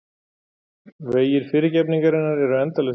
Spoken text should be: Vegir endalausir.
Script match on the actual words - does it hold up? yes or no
no